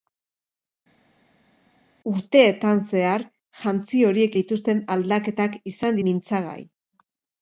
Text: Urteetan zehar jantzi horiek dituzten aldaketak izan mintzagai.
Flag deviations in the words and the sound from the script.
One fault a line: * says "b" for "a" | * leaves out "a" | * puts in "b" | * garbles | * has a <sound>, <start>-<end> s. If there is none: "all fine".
all fine